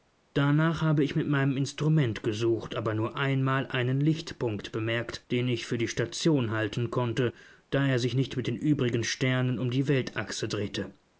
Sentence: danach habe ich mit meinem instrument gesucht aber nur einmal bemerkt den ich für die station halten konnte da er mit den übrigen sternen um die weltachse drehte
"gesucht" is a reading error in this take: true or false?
false